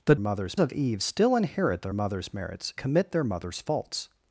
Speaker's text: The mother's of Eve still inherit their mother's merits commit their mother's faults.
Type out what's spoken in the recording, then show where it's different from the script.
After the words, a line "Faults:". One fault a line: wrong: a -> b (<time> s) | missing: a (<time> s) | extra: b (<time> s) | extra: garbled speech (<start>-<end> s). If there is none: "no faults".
The mother's of Eve still inherit their mother's merits commit their mother's faults.
Faults:
no faults